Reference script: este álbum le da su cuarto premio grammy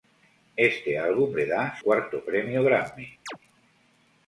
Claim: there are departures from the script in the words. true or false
true